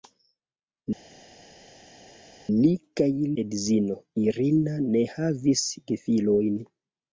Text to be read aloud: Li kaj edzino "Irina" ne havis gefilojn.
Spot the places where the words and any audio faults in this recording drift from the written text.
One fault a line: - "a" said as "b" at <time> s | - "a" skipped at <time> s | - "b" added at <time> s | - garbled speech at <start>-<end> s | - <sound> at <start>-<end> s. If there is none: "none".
none